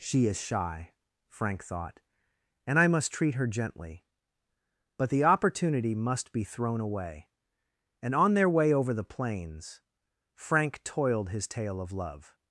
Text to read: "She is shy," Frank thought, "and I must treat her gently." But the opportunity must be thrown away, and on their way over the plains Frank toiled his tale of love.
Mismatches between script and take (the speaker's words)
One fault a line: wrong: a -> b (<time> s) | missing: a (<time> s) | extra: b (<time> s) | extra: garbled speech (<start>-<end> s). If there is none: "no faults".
no faults